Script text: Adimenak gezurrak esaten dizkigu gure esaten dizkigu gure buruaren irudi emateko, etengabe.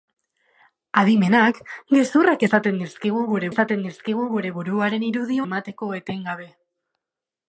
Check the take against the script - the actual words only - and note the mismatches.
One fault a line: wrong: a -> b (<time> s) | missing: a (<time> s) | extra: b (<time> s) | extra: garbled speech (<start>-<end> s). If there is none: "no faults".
no faults